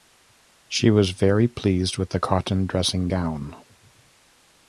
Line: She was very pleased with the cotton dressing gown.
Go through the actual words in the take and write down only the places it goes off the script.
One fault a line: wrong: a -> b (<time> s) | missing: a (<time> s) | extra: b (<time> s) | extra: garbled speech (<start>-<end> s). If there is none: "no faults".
no faults